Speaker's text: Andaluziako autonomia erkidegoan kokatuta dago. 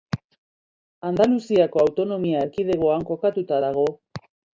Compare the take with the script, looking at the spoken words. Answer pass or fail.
pass